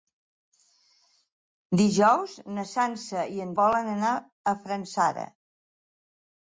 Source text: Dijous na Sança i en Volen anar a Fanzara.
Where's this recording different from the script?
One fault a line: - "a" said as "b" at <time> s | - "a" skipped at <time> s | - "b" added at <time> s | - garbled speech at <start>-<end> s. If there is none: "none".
none